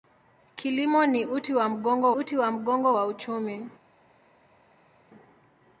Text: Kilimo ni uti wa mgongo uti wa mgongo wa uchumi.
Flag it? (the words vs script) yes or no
no